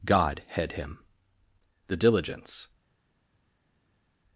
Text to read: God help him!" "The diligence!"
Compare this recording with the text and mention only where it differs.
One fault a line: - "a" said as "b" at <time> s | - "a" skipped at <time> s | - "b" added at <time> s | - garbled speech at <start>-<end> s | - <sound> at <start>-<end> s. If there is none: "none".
- "help" said as "head" at 0.5 s